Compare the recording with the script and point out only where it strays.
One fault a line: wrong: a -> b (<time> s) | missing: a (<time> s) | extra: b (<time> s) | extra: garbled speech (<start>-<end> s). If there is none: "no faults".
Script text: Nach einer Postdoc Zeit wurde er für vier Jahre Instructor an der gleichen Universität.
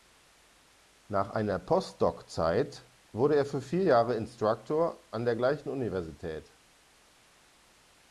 no faults